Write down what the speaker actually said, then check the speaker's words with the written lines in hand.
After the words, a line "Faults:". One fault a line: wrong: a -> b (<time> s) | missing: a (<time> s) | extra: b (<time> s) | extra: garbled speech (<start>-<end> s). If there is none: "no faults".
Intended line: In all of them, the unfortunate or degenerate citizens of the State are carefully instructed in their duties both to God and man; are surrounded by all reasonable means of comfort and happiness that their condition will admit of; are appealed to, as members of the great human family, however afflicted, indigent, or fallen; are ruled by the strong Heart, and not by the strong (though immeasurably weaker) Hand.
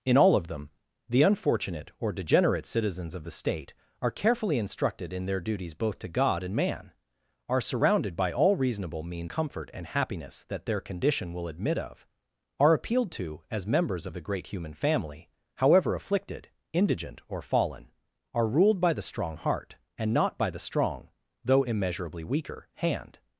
In all of them, the unfortunate or degenerate citizens of the State are carefully instructed in their duties both to God and man; are surrounded by all reasonable means comfort and happiness that their condition will admit of; are appealed to, as members of the great human family, however afflicted, indigent, or fallen; are ruled by the strong Heart, and not by the strong (though immeasurably weaker) Hand.
Faults:
missing: of (9.3 s)